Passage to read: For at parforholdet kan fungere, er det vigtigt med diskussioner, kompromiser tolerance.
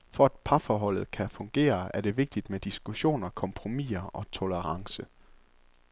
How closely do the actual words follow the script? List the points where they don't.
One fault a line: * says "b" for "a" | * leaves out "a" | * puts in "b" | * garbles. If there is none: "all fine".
* puts in "og"